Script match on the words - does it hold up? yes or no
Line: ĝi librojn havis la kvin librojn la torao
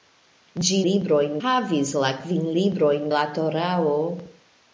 yes